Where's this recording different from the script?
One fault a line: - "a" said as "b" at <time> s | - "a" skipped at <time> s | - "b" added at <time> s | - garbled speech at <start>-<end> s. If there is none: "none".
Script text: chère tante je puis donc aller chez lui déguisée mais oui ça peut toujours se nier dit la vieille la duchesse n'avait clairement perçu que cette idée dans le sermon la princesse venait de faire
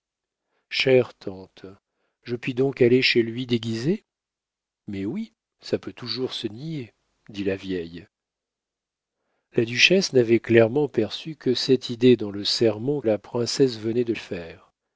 none